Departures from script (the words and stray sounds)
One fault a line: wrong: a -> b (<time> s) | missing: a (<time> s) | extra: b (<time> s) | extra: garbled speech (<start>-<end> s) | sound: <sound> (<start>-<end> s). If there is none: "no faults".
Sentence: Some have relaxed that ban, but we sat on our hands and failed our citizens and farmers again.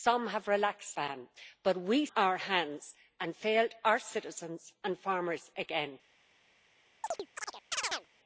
missing: that (0.9 s)
missing: sat on (2.1 s)
sound: chirp (7.0-8.1 s)